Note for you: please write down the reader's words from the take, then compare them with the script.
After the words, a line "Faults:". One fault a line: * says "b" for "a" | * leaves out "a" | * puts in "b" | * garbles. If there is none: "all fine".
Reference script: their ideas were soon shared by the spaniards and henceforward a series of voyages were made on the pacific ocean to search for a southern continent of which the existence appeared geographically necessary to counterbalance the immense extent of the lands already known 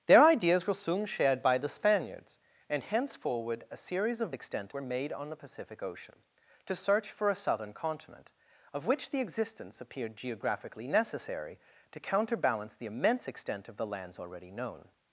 their ideas were soon shared by the spaniards and henceforward a series of extent were made on the pacific ocean to search for a southern continent of which the existence appeared geographically necessary to counterbalance the immense extent of the lands already known
Faults:
* says "extent" for "voyages"